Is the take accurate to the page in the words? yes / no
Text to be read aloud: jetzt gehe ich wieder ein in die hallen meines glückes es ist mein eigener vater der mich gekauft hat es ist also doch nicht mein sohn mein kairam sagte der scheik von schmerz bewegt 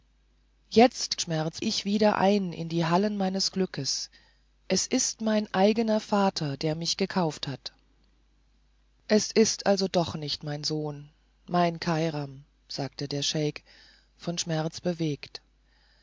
no